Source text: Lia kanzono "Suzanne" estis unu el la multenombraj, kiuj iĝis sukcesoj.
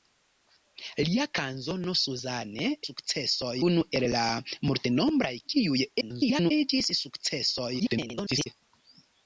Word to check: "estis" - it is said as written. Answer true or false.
false